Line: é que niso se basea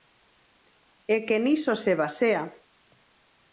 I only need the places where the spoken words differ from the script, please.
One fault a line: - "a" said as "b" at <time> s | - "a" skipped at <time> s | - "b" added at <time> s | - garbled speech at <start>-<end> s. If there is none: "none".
none